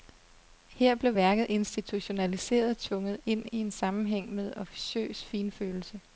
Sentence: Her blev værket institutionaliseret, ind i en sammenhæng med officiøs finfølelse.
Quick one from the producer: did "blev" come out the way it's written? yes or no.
yes